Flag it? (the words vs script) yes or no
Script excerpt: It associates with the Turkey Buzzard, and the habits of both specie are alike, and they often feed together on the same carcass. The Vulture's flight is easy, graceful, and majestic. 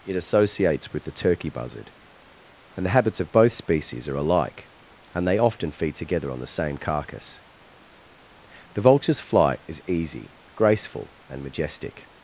yes